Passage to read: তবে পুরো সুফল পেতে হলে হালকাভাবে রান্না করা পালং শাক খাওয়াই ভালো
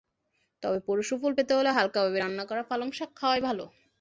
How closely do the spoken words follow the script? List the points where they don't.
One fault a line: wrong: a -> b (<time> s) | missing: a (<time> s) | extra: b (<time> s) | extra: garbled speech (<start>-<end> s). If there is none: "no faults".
no faults